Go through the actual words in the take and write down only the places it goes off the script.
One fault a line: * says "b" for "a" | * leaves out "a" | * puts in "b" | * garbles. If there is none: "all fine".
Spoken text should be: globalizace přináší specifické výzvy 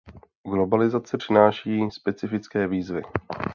all fine